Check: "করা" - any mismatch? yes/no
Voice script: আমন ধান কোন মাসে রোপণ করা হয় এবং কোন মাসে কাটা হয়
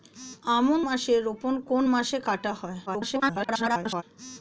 yes